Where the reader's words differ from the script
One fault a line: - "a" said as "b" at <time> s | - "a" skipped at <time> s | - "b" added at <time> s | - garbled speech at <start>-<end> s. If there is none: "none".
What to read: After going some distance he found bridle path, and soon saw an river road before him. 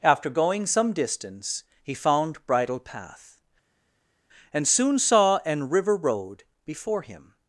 none